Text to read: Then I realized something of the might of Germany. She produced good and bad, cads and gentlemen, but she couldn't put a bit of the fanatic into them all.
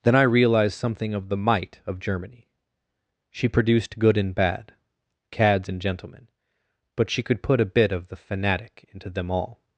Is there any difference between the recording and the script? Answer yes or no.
yes